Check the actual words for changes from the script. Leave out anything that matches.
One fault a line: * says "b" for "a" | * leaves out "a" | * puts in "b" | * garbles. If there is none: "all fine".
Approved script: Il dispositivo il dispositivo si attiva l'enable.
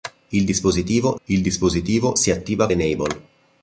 all fine